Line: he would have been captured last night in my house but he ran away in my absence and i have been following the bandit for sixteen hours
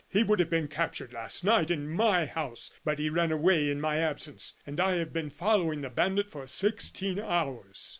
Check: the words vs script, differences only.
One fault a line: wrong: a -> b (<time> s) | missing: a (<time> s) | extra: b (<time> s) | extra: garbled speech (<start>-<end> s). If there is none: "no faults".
no faults